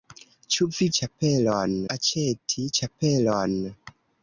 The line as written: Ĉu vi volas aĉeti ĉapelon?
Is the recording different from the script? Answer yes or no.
yes